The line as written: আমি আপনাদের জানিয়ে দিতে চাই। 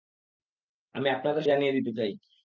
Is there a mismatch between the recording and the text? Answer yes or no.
no